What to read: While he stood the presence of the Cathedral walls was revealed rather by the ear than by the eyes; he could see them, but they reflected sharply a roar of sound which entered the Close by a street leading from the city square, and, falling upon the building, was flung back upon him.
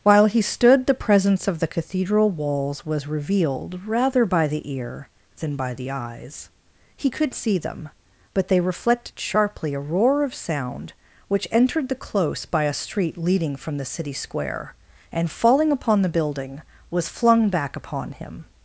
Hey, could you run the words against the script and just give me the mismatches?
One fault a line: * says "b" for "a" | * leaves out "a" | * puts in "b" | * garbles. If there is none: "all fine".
all fine